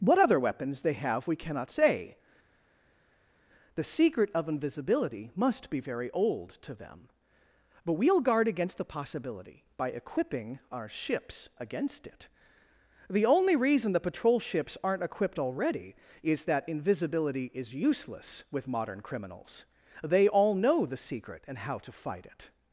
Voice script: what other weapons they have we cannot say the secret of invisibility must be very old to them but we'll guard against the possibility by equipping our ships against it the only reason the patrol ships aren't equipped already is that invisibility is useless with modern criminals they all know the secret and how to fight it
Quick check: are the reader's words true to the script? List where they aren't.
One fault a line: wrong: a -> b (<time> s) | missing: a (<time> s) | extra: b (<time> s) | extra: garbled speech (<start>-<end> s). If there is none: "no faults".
no faults